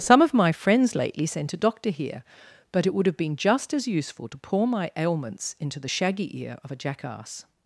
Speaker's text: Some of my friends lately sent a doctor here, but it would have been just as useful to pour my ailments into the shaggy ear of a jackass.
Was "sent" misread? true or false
false